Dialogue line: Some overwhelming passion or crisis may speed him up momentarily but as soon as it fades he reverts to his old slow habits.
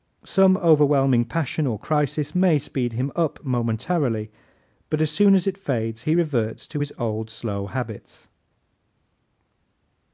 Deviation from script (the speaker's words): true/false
false